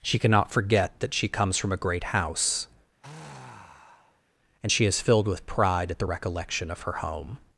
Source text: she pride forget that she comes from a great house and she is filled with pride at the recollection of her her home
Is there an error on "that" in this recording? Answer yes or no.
no